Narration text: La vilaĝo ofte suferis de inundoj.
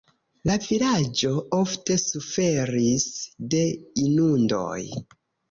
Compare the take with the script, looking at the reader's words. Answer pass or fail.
pass